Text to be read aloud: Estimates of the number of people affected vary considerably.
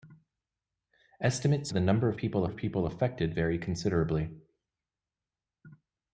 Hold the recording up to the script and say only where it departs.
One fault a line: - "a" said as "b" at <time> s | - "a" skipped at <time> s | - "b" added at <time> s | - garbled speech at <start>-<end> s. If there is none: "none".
- "of" skipped at 1.7 s
- "of people" added at 2.4 s